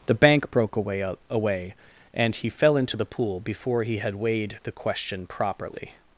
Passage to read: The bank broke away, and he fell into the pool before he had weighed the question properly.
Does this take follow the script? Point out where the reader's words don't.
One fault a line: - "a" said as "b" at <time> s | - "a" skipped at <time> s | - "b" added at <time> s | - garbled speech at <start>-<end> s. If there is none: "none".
- "away" added at 1.3 s